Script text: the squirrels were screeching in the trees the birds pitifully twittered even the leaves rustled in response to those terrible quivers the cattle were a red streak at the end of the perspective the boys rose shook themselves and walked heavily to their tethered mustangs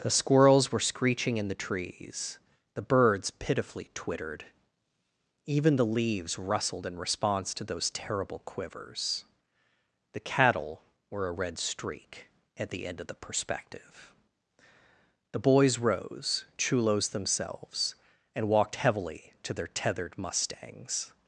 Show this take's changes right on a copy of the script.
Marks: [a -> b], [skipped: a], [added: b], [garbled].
the squirrels were screeching in the trees the birds pitifully twittered even the leaves rustled in response to those terrible quivers the cattle were a red streak at the end of the perspective the boys rose [shook -> chulos] themselves and walked heavily to their tethered mustangs